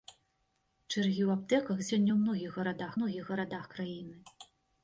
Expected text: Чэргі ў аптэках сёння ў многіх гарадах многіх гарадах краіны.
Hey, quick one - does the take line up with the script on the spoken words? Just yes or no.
yes